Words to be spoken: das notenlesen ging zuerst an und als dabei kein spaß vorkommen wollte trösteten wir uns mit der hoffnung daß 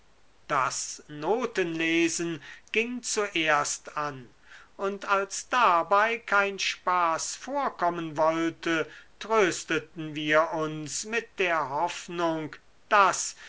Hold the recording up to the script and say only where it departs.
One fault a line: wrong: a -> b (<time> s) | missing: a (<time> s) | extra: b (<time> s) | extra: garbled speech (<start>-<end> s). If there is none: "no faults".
no faults